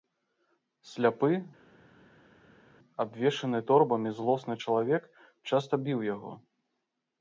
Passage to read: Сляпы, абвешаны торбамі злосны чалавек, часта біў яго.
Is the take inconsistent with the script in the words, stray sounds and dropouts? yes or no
no